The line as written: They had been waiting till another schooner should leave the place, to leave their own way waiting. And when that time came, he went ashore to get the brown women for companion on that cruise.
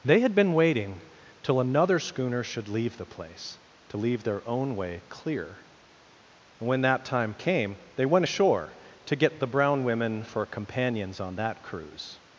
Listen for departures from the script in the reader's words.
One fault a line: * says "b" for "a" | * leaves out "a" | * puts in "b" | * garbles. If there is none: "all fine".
* says "clear" for "waiting"
* says "they" for "he"
* says "companions" for "companion"